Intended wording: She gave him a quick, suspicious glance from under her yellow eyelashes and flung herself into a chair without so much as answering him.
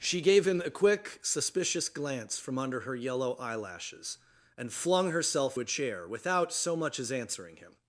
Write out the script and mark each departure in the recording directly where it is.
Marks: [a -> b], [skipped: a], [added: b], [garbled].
She gave him a quick, suspicious glance from under her yellow eyelashes and flung herself [skipped: into] a chair without so much as answering him.